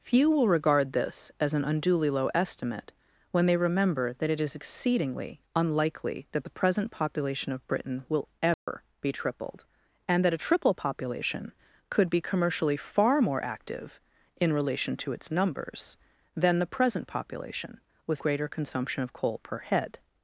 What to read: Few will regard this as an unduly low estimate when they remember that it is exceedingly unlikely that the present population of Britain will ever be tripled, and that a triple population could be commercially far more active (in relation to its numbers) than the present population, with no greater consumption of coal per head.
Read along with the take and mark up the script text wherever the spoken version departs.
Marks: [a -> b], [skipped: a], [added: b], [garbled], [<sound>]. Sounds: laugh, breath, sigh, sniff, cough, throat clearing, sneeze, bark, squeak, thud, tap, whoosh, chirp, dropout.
Few will regard this as an unduly low estimate when they remember that it is exceedingly unlikely that the present population of Britain will ever [dropout] be tripled, and that a triple population could be commercially far more active (in relation to its numbers) than the present population, with [skipped: no] greater consumption of coal per head.